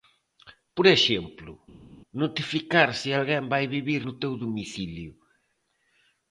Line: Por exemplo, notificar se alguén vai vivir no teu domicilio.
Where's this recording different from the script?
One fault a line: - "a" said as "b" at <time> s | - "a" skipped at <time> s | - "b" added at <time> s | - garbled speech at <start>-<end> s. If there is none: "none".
none